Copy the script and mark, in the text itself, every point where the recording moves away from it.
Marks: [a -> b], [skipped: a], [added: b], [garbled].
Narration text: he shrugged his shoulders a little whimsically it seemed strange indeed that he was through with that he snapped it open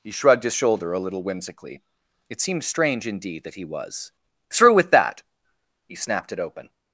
he shrugged his [shoulders -> shoulder] a little whimsically it seemed strange indeed that he was through with that he snapped it open